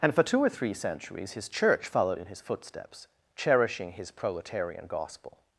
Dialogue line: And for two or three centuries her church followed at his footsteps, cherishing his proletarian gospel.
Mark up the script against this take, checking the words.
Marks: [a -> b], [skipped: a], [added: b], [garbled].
And for two or three centuries [her -> his] church followed [at -> in] his footsteps, cherishing his proletarian gospel.